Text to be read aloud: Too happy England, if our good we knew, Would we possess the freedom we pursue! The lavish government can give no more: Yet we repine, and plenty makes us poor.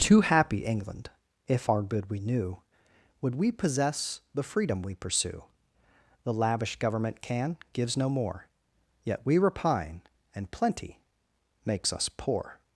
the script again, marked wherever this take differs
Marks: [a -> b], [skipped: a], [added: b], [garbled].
Too happy England, if our good we knew, Would we possess the freedom we pursue! The lavish government can [give -> gives] no more: Yet we repine, and plenty makes us poor.